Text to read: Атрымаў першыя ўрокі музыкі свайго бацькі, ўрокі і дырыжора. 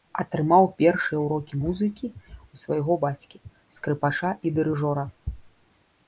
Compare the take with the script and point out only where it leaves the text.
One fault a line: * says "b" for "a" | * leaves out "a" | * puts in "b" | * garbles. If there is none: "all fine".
* puts in "ў"
* says "скрыпача" for "ўрокі"